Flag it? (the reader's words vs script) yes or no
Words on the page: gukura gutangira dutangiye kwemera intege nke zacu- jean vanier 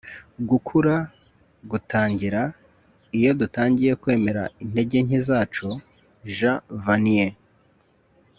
yes